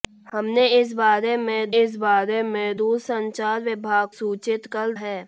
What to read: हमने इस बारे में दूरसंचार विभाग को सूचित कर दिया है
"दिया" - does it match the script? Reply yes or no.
no